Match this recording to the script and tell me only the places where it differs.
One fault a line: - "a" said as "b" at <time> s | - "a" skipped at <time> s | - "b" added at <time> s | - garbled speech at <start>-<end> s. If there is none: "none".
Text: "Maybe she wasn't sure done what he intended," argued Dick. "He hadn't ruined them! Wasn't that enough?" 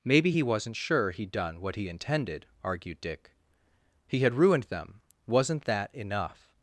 - "she" said as "he" at 0.3 s
- "he'd" added at 1.1 s
- "hadn't" said as "had" at 4.2 s